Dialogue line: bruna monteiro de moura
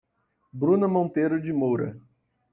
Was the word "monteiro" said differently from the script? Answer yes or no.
no